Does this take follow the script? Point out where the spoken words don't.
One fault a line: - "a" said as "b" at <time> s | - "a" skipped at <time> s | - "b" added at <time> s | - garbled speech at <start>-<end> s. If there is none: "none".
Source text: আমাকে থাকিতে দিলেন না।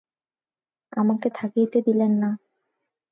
none